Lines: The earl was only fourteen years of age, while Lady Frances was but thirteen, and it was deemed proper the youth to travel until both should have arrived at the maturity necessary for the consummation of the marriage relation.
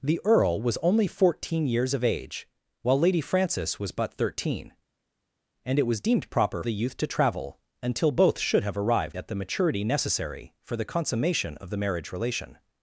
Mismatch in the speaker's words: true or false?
false